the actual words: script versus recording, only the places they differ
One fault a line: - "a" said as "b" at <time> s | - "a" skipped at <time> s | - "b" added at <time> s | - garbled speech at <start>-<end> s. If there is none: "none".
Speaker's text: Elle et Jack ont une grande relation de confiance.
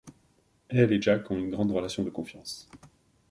none